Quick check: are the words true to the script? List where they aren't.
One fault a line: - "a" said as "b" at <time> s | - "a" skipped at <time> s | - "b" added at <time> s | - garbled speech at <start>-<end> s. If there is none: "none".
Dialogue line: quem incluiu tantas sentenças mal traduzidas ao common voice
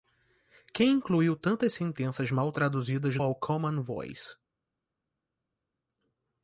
none